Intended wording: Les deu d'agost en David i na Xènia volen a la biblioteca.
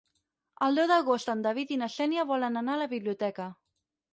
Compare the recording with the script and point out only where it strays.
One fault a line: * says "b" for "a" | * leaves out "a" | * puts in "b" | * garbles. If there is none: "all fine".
* says "El" for "Les"
* puts in "anar"